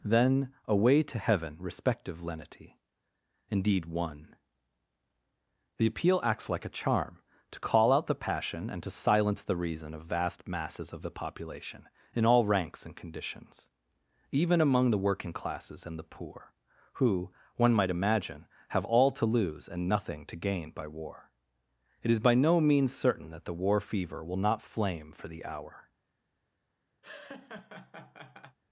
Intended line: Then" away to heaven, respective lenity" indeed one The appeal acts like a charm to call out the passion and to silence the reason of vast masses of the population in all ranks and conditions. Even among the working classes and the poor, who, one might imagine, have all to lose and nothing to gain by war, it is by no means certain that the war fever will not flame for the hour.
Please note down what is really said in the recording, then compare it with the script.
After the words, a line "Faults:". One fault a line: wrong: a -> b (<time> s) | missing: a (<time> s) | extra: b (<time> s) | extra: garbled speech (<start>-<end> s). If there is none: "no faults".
Then" away to heaven, respective lenity" indeed one The appeal acts like a charm to call out the passion and to silence the reason of vast masses of the population in all ranks and conditions. Even among the working classes and the poor, who, one might imagine, have all to lose and nothing to gain by war, it is by no means certain that the war fever will not flame for the hour.
Faults:
no faults